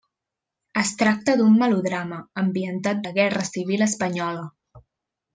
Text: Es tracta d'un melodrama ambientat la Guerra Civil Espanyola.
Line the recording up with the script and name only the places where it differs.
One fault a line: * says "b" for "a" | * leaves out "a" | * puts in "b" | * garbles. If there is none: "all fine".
all fine